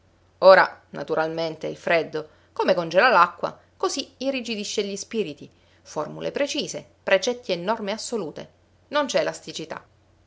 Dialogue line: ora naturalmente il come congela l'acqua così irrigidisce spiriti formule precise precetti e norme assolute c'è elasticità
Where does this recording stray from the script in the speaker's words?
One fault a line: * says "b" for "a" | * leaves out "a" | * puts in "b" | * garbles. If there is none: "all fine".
* puts in "freddo"
* puts in "gli"
* puts in "non"